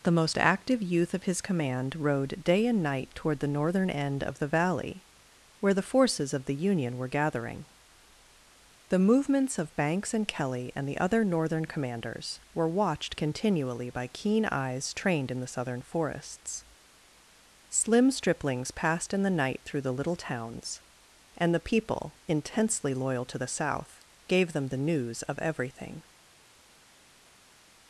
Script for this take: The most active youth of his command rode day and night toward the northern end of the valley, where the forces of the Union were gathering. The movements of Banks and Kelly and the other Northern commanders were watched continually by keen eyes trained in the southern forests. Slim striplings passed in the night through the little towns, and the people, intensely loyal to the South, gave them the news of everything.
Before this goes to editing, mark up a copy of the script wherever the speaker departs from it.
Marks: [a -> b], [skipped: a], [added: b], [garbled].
The most active youth of his command rode day and night toward the northern end of the valley, where the forces of the Union were gathering. The movements of Banks and Kelly and the other Northern commanders were watched continually by keen eyes trained in the southern forests. Slim striplings passed in the night through the little towns, and the people, intensely loyal to the South, gave them the news of everything.